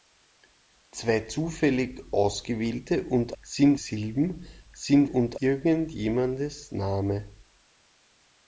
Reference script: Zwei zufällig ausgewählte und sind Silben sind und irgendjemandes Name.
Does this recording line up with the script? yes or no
yes